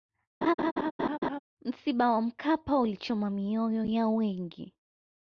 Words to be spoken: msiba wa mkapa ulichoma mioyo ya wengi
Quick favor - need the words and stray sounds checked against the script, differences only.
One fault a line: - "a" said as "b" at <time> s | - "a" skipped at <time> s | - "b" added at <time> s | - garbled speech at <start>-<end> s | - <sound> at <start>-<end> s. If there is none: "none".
- laugh at 0.4-1.4 s